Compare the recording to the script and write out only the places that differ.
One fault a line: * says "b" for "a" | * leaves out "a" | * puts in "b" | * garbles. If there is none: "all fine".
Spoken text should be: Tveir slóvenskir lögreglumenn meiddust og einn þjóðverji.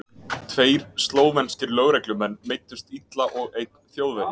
* puts in "illa"